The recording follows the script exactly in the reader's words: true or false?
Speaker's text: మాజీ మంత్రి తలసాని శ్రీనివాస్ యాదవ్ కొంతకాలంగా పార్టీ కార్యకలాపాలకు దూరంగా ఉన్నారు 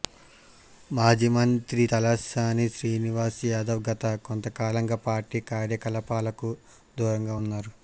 false